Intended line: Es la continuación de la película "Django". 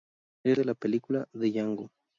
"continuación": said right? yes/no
no